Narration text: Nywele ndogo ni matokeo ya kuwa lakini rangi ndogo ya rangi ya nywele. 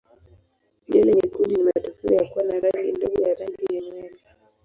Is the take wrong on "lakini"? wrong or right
wrong